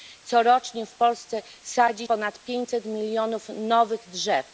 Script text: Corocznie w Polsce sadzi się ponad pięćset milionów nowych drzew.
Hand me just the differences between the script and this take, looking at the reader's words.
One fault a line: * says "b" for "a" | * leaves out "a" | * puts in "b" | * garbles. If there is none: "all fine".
* leaves out "się"